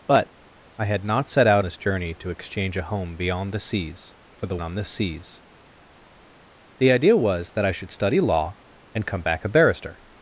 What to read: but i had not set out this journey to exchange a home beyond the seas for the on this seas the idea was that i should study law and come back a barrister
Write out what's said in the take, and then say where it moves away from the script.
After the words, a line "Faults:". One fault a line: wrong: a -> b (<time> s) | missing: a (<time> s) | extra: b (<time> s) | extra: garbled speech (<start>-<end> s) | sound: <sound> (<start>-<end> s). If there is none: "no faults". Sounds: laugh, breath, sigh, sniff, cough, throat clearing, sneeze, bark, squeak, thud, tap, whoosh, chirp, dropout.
but i had not set out this journey to exchange a home beyond the seas for the on this seas the idea was that i should study law and come back a barrister
Faults:
no faults